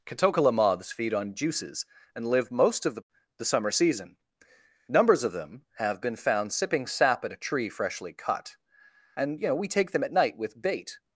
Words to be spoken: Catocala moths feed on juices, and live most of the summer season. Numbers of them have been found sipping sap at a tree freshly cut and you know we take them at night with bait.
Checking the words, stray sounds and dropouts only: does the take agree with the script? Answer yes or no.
no